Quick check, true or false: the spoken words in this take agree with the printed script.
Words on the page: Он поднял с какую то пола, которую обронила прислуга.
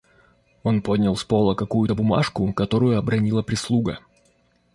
false